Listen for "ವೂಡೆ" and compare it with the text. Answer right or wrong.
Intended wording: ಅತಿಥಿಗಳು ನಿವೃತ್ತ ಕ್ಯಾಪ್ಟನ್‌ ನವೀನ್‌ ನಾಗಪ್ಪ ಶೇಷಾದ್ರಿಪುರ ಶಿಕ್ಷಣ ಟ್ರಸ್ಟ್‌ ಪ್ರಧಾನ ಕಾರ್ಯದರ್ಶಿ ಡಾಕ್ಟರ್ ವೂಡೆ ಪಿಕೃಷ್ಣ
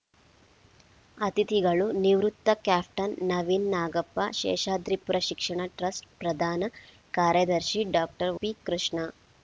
wrong